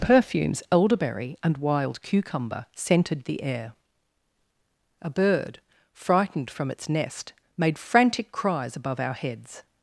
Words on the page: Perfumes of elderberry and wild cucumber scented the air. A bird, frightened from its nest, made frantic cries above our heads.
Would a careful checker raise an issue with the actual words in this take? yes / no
yes